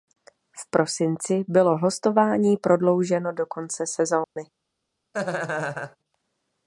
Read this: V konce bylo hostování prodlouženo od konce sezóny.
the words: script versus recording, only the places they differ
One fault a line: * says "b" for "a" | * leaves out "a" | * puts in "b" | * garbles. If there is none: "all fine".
* says "prosinci" for "konce"
* says "do" for "od"